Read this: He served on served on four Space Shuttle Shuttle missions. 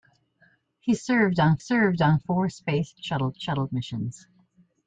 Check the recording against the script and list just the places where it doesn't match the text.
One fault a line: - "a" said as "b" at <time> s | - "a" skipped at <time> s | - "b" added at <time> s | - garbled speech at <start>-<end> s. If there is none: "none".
none